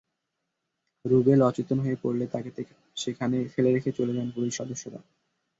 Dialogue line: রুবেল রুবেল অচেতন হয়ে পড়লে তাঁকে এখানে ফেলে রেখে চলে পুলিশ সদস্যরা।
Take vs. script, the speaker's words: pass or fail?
fail